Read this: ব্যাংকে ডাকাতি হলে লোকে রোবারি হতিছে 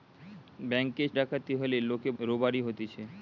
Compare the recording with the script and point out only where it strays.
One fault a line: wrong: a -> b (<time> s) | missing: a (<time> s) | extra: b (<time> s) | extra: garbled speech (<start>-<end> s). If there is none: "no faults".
no faults